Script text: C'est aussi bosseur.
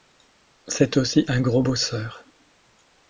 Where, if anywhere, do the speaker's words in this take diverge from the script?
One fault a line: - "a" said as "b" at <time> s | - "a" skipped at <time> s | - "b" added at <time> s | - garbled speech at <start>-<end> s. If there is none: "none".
- "un gros" added at 1.3 s